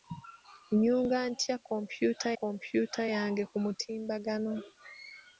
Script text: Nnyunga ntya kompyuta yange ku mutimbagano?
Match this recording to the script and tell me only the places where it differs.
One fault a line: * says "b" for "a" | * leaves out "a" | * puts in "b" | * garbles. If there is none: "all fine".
* puts in "kompyuta"